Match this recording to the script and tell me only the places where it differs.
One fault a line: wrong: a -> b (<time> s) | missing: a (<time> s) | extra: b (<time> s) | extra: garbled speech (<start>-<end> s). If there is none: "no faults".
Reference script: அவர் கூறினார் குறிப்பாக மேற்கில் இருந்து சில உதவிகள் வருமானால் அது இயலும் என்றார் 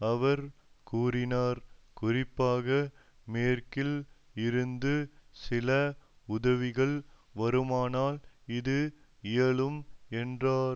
wrong: அது -> இது (8.6 s)